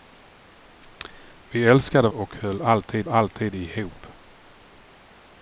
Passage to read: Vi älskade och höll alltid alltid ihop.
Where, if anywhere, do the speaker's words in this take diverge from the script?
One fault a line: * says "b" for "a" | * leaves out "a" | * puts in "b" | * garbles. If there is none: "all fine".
all fine